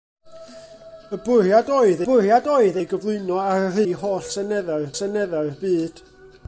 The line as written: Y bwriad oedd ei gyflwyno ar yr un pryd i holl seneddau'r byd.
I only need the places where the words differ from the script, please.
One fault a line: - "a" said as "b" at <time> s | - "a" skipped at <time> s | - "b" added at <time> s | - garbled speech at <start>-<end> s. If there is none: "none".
- "bwriad oedd" added at 2.0 s
- "un pryd" skipped at 3.8 s
- "seneddau'r" added at 5.0 s